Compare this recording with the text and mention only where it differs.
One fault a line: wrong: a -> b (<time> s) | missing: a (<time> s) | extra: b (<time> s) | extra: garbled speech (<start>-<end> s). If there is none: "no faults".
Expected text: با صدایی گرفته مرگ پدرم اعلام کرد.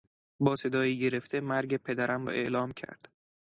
no faults